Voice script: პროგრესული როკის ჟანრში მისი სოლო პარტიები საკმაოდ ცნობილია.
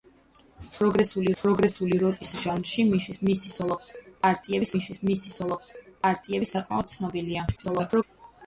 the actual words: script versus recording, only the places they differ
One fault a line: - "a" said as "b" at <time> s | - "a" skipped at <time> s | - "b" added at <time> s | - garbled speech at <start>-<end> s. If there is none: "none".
- "პროგრესული" added at 1.4 s
- "მისი სოლო პარტიები" added at 4.7 s
- garbled speech at 7.6-8.0 s